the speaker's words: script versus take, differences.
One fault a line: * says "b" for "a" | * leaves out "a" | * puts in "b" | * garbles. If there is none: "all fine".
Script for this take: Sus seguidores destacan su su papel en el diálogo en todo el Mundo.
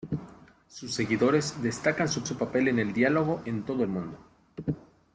all fine